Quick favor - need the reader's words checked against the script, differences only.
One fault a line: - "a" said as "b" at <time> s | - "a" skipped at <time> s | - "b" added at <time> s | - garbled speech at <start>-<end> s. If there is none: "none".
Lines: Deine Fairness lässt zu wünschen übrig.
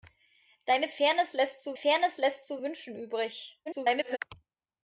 - "Fairness lässt zu" added at 1.7 s
- garbled speech at 3.7-4.2 s